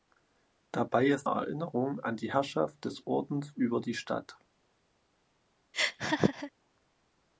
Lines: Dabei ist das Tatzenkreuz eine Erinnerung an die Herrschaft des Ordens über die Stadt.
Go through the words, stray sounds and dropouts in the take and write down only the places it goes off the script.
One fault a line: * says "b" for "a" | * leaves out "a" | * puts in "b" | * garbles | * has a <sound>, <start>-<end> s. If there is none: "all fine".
* leaves out "das Tatzenkreuz eine"
* has a laugh, 5.7-6.5 s